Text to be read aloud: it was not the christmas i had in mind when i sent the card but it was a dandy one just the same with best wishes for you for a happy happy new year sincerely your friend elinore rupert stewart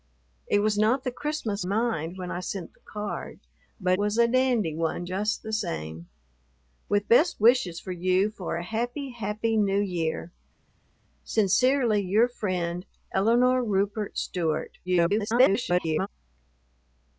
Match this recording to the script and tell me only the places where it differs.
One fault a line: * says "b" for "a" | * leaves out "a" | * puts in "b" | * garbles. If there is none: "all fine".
* leaves out "i had in"
* leaves out "it"
* garbles